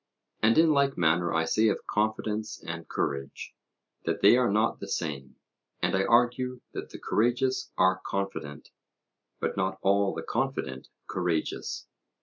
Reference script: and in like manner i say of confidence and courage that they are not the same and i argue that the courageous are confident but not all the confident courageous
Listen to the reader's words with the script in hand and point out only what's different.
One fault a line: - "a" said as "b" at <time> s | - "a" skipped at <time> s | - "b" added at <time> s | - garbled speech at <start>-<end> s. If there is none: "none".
none